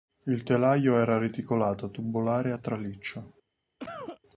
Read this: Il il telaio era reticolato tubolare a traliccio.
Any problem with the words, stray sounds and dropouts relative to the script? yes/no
yes